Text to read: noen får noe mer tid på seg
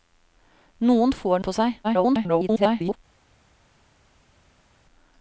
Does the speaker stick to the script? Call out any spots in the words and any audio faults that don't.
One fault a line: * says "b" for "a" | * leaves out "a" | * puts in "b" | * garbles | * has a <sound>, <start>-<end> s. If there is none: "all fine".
* leaves out "noe mer tid"
* garbles